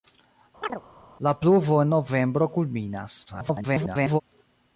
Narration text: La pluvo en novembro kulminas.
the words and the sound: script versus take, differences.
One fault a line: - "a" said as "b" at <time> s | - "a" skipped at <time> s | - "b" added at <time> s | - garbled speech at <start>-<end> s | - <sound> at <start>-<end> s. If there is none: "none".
- chirp at 0.6-0.8 s
- garbled speech at 3.3-4.2 s